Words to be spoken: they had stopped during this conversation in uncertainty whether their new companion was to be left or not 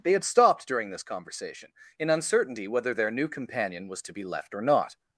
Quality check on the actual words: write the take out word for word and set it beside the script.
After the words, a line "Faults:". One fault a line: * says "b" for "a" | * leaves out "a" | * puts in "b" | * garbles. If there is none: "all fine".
they had stopped during this conversation in uncertainty whether their new companion was to be left or not
Faults:
all fine